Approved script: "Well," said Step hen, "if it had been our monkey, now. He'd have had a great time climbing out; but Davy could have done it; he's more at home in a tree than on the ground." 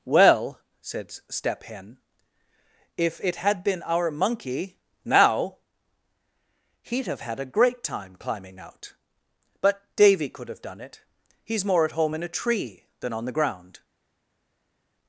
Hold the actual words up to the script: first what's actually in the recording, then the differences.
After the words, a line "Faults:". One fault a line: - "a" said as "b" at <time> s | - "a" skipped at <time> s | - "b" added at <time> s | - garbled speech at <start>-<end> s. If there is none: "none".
"Well," said Step hen, "if it had been our monkey, now. He'd have had a great time climbing out; but Davy could have done it; he's more at home in a tree than on the ground."
Faults:
none